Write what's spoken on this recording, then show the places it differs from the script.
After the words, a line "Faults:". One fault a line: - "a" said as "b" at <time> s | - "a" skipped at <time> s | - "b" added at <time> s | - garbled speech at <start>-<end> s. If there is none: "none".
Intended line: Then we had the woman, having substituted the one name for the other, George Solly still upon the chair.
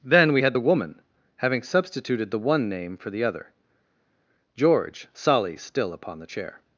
Then we had the woman, having substituted the one name for the other, George Solly still upon the chair.
Faults:
none